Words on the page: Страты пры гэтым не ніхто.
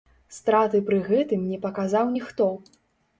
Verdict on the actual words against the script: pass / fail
fail